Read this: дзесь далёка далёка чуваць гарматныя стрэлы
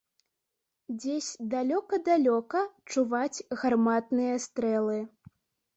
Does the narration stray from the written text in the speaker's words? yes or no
no